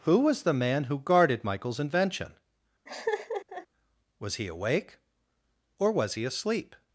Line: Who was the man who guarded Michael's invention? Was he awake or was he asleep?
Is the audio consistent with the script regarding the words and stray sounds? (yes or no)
no